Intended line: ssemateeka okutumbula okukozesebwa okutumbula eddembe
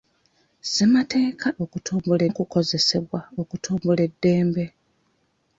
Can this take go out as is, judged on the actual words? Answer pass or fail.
pass